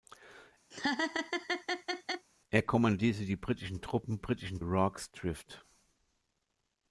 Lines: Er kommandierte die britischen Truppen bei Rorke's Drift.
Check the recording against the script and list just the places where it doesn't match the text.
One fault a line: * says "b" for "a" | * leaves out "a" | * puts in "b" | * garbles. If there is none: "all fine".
* says "britischen" for "bei"